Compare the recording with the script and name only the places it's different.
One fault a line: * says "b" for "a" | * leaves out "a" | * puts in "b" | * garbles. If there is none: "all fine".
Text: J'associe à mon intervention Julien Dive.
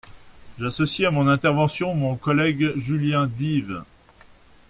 * puts in "mon collègue"